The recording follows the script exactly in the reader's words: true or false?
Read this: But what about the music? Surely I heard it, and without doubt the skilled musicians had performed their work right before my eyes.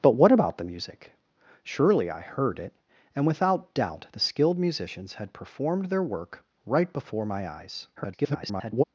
false